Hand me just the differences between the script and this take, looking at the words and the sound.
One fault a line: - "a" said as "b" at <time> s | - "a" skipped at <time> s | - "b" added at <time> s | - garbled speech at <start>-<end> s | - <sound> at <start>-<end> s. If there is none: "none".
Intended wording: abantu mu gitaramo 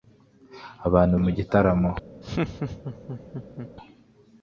- laugh at 2.2-3.7 s